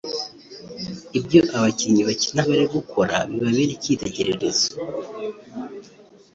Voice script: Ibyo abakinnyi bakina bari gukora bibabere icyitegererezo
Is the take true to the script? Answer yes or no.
yes